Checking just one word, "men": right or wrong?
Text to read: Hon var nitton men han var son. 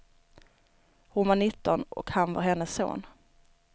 wrong